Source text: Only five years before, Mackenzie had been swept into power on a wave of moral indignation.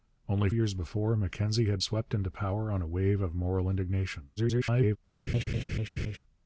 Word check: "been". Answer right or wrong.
wrong